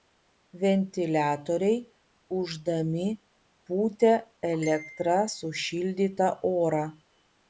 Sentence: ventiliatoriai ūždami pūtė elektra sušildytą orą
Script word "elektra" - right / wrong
right